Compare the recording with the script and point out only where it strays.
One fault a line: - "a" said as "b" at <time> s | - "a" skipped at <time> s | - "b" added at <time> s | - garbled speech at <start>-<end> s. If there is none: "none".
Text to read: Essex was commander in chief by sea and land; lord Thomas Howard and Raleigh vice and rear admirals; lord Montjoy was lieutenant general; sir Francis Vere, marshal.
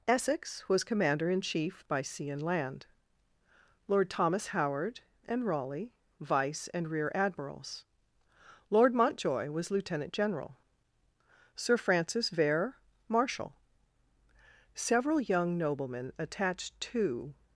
- "Several young noblemen attached to" added at 14.7 s